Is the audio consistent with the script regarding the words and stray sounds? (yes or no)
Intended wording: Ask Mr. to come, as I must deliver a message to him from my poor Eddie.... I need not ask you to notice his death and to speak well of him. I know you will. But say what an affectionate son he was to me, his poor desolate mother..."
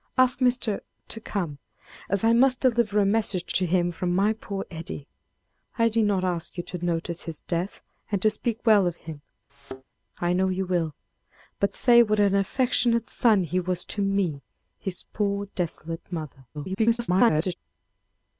no